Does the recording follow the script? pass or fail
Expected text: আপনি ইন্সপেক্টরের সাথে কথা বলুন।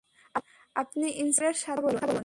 pass